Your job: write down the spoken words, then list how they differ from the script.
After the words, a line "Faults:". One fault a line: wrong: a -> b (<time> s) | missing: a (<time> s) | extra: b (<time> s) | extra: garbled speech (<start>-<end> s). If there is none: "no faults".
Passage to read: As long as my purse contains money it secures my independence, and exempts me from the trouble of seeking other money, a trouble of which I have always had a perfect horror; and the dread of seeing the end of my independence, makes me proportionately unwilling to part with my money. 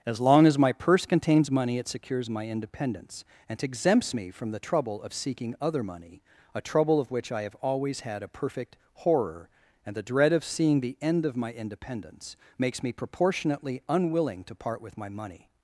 As long as my purse contains money it secures my independence, and exempts me from the trouble of seeking other money, a trouble of which I have always had a perfect horror; and the dread of seeing the end of my independence, makes me proportionately unwilling to part with my money.
Faults:
no faults